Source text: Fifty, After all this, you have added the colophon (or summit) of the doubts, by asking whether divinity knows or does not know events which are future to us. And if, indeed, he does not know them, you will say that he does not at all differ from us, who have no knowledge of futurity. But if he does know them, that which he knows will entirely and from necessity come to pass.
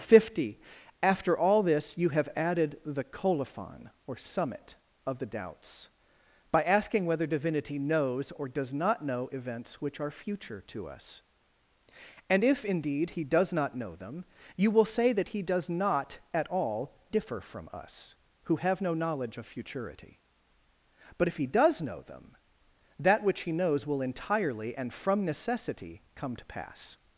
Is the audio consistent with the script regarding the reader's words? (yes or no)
yes